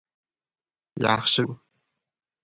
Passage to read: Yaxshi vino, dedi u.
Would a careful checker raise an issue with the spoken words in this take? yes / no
yes